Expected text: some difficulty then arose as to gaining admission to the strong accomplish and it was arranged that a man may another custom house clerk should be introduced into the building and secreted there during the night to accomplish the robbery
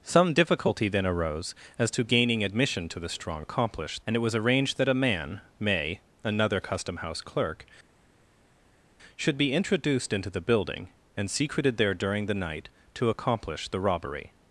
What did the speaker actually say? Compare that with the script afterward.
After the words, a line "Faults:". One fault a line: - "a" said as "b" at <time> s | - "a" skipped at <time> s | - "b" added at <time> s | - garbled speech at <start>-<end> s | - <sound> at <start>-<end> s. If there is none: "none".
some difficulty then arose as to gaining admission to the strong accomplish and it was arranged that a man may another custom house clerk should be introduced into the building and secreted there during the night to accomplish the robbery
Faults:
none